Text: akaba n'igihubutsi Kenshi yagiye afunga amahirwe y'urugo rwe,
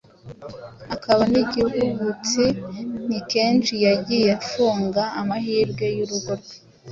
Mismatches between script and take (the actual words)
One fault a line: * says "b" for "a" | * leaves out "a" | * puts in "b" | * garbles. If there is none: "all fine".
* puts in "Ni"